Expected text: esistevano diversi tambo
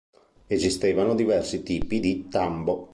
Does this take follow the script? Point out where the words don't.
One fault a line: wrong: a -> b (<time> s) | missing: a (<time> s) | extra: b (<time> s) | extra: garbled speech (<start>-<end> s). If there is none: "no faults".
extra: tipi di (1.6 s)